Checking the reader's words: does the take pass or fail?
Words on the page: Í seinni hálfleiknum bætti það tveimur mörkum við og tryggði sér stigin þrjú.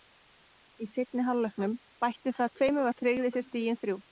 fail